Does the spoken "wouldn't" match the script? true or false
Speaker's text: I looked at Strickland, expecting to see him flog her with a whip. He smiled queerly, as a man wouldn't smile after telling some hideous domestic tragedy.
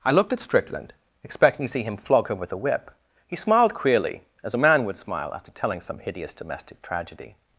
false